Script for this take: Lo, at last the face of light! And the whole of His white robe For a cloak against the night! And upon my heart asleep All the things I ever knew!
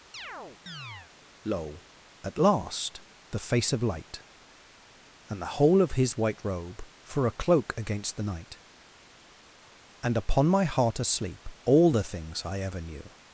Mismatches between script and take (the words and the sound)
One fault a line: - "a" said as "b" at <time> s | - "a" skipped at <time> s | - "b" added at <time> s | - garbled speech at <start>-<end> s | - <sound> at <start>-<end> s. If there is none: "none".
- chirp at 0.1-1.1 s